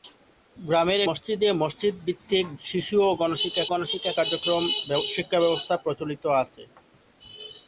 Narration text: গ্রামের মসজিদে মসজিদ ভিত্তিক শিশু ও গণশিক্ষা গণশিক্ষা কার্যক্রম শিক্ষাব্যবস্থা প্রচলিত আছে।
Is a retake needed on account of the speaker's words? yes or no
no